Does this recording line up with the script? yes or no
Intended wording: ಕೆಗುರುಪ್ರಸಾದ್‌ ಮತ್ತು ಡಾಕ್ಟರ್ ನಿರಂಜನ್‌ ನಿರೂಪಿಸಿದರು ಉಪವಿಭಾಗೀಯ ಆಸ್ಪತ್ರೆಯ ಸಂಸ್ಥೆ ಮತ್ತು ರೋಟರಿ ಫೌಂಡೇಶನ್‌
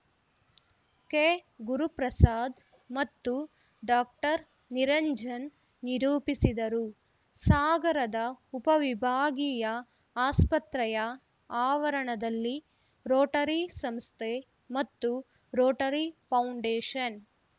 no